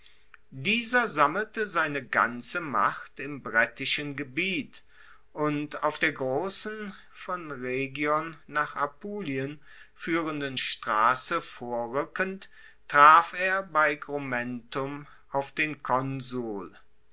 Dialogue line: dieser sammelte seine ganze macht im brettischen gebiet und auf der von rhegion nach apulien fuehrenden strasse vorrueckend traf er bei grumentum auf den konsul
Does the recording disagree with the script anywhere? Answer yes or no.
yes